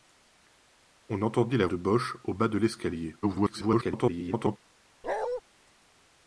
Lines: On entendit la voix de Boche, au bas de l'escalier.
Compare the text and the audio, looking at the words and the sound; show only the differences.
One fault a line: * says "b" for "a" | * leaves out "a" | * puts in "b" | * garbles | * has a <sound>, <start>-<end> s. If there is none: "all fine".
* leaves out "voix"
* garbles
* has a bark, 5.0-5.4 s